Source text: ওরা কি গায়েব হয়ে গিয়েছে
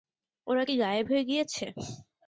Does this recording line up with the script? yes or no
yes